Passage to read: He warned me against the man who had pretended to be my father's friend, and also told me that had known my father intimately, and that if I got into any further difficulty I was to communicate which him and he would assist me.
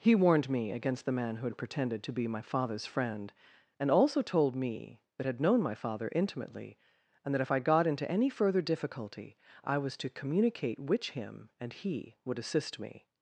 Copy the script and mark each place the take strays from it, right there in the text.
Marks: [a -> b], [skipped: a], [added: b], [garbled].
He warned me against the man who had pretended to be my father's friend, and also told me that had known my father intimately, and that if I got into any further difficulty I was to communicate which him and he would assist me.